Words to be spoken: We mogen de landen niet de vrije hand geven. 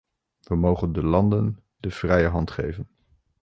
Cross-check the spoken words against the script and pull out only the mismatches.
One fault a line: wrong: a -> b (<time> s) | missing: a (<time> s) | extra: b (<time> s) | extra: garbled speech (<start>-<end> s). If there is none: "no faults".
missing: niet (1.6 s)